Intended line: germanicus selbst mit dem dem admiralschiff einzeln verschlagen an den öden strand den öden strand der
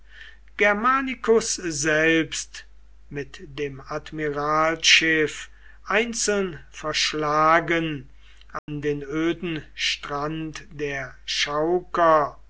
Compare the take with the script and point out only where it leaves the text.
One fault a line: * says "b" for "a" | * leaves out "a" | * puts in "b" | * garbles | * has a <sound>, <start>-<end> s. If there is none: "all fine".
* leaves out "dem"
* has a dropout, 8.6-8.7 s
* leaves out "den öden strand"